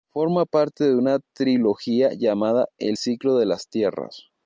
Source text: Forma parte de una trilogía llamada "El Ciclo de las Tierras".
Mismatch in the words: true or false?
false